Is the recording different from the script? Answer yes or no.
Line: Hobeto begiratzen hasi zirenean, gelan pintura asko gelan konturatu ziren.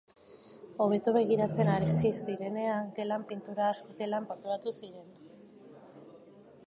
no